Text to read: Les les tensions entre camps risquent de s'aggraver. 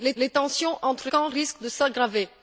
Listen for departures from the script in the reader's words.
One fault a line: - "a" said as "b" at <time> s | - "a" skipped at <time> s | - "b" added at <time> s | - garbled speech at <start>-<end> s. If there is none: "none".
none